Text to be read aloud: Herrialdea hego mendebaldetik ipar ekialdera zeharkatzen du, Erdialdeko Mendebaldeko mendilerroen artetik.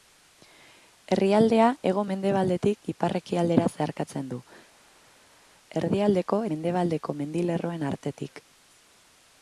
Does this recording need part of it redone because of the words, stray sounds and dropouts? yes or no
no